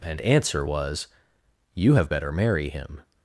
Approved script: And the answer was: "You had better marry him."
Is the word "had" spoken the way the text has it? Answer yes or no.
no